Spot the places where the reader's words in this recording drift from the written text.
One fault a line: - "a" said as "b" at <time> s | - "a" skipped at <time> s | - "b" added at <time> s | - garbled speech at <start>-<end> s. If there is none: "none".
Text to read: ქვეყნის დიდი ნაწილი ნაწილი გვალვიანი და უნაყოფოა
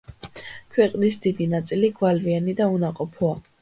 - "ნაწილი" skipped at 1.9 s